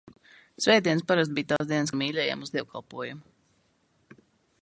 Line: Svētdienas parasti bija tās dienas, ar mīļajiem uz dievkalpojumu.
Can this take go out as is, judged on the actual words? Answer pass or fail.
pass